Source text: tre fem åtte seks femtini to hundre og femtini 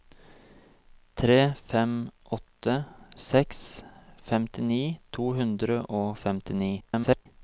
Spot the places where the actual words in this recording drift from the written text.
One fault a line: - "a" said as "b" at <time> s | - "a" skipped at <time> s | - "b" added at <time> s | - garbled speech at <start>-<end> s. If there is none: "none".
- garbled speech at 6.8-7.3 s